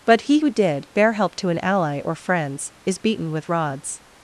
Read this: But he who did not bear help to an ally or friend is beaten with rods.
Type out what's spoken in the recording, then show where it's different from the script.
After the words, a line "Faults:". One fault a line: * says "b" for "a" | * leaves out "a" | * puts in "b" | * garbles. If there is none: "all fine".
But he who did bear help to an ally or friends is beaten with rods.
Faults:
* leaves out "not"
* says "friends" for "friend"